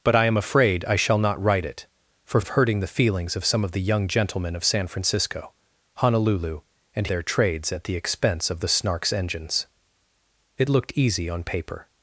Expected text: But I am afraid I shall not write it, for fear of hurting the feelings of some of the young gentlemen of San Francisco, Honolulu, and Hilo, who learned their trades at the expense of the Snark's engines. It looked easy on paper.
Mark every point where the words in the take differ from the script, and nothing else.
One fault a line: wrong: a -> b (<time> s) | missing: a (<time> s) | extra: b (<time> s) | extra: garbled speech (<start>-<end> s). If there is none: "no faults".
missing: fear (2.4 s)
missing: Hilo who learned (7.1 s)